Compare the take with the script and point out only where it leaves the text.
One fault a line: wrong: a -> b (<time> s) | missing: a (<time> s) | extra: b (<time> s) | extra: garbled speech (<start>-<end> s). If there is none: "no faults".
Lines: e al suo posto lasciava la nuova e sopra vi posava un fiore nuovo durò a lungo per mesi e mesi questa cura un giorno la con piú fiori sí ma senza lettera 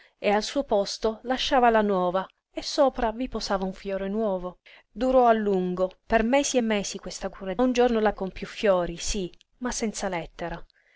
no faults